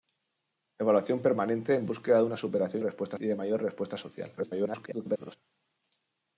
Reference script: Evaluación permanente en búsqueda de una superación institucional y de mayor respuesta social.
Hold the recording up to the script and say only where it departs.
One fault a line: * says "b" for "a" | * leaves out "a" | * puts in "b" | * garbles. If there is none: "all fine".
* says "respuesta" for "institucional"
* garbles